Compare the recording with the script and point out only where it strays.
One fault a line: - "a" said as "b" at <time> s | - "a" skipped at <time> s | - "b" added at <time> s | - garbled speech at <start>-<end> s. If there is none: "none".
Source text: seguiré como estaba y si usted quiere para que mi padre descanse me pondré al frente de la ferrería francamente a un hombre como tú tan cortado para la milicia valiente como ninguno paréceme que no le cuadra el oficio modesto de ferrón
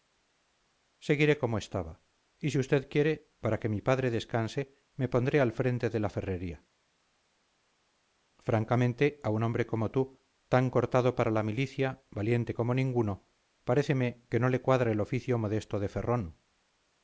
none